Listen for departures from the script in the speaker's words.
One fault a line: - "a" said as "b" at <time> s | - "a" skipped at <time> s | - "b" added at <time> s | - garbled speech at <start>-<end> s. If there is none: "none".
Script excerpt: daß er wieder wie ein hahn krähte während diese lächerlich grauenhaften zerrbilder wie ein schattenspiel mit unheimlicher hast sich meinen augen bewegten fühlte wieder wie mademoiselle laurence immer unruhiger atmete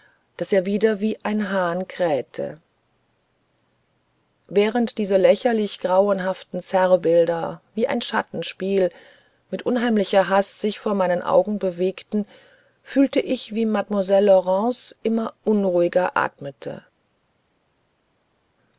- "vor" added at 10.8 s
- "wieder" said as "ich" at 13.2 s